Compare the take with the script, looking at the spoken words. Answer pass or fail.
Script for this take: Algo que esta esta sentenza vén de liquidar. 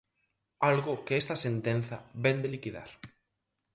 fail